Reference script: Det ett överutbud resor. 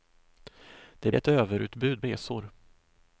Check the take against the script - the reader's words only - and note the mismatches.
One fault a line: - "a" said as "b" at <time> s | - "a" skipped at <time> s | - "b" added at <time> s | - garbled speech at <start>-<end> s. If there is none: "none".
none